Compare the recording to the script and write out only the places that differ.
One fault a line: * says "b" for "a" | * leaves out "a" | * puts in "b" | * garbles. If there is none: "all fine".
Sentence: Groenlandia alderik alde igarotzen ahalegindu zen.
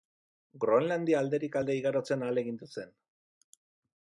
all fine